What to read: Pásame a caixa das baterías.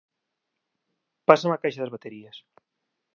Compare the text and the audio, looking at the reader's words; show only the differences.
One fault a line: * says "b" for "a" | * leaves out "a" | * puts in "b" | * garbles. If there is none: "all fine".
all fine